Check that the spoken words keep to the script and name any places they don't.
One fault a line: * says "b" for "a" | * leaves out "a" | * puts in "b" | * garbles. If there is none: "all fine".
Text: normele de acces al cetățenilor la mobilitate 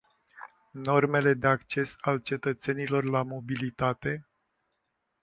all fine